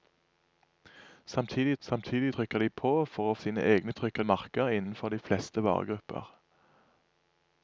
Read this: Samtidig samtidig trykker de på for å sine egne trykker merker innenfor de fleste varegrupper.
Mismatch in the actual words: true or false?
false